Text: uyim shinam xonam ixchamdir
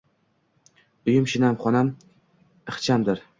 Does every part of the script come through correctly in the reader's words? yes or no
yes